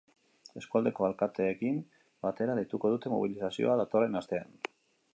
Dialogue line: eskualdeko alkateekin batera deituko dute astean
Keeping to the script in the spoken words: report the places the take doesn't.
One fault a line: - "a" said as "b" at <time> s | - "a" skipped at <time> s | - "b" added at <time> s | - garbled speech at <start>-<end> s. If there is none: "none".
- "mobilizazioa datorren" added at 3.2 s